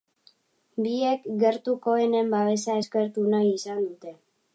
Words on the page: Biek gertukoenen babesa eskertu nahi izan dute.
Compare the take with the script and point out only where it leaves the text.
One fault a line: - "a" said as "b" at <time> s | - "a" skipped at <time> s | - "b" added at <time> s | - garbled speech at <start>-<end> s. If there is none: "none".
none